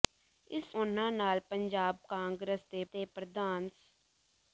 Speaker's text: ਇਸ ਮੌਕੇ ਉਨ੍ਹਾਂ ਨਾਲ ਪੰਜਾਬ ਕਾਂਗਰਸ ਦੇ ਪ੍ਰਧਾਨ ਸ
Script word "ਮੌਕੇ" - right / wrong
wrong